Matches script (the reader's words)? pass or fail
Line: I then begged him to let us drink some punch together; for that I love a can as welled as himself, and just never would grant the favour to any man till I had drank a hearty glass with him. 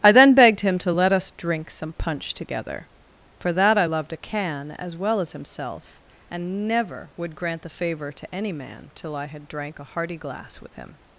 fail